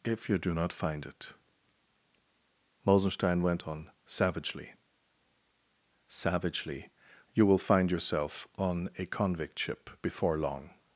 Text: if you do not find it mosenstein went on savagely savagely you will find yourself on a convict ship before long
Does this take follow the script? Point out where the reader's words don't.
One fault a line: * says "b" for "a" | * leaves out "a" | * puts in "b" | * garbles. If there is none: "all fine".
all fine